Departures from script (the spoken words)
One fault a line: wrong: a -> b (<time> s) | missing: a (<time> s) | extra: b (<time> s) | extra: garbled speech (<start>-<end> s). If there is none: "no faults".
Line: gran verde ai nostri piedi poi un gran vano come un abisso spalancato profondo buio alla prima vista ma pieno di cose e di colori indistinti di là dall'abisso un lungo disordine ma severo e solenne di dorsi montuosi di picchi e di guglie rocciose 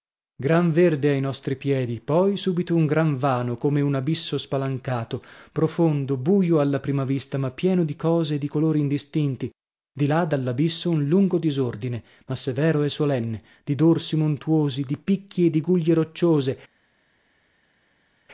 extra: subito (2.4 s)